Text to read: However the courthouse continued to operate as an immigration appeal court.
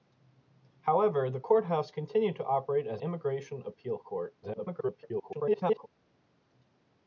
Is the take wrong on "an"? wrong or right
wrong